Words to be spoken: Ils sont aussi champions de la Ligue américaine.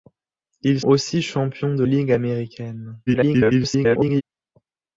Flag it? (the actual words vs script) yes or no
yes